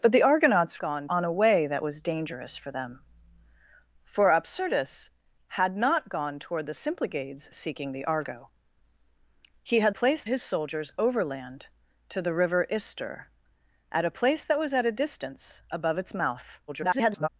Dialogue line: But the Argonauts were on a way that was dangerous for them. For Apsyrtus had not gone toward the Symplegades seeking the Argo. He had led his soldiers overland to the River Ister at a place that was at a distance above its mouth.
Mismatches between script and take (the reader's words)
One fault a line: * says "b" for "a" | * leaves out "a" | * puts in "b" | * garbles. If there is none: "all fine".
* says "gone" for "were"
* says "place" for "led"
* garbles